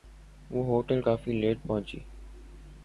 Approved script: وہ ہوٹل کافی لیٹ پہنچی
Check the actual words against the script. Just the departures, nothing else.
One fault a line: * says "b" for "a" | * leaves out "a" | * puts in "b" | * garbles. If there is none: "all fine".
all fine